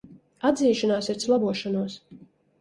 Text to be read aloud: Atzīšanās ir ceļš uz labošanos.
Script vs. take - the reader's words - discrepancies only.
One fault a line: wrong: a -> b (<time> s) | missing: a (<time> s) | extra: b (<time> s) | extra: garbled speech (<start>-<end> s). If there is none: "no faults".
missing: ceļš (1.2 s)